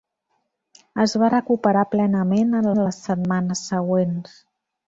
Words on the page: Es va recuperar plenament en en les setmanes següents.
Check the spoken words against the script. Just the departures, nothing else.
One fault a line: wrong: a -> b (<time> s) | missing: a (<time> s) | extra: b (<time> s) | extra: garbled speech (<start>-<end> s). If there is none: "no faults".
no faults